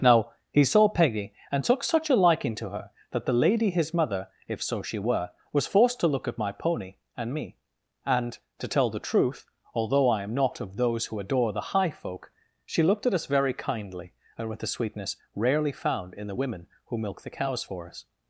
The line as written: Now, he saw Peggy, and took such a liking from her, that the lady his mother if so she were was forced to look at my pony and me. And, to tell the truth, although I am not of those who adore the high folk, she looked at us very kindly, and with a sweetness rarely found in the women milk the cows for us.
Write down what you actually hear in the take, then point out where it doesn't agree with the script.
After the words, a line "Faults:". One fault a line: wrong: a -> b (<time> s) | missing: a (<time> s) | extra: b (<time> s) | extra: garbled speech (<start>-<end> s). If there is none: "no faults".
Now, he saw Peggy, and took such a liking to her, that the lady his mother if so she were was forced to look at my pony and me. And, to tell the truth, although I am not of those who adore the high folk, she looked at us very kindly, and with a sweetness rarely found in the women who milk the cows for us.
Faults:
wrong: from -> to (2.5 s)
extra: who (16.9 s)